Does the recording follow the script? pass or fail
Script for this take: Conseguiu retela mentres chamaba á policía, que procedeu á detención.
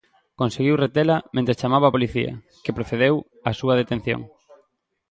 fail